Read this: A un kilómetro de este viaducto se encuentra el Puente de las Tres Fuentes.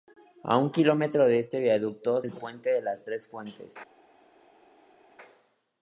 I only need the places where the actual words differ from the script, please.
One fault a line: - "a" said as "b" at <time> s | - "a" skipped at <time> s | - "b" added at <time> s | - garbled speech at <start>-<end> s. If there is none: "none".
- "se encuentra" skipped at 2.2 s